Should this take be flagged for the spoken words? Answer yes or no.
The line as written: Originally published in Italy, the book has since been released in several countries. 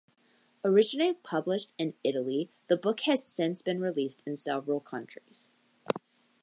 no